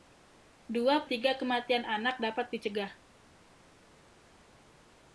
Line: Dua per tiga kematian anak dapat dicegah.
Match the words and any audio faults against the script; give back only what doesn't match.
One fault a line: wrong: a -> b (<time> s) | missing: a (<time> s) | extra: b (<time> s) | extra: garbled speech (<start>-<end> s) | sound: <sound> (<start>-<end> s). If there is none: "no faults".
missing: per (1.1 s)